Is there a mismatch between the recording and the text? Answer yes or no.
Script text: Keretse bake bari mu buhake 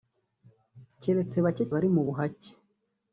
no